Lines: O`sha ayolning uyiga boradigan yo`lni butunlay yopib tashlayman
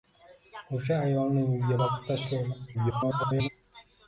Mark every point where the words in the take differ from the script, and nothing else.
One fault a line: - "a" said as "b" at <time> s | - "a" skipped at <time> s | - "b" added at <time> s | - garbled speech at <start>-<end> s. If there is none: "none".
- "boradigan yo`lni butunlay" skipped at 1.8 s
- garbled speech at 2.7-3.5 s